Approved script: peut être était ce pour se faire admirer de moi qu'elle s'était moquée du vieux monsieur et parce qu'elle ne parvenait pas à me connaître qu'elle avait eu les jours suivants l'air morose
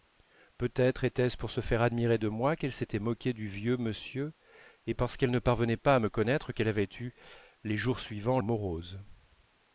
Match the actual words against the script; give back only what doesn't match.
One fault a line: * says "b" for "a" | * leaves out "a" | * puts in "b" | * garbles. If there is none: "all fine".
* leaves out "l'air"